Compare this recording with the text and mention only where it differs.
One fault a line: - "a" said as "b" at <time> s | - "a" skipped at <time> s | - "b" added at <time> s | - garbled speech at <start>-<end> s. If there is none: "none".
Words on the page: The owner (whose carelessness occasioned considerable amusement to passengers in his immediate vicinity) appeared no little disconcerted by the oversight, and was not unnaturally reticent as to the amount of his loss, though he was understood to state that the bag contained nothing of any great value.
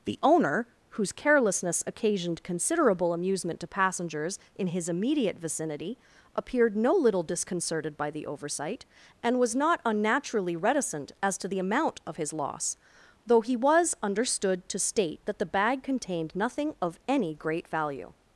none